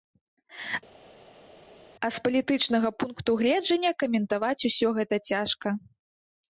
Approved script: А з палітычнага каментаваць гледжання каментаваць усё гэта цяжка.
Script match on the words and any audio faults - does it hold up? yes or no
no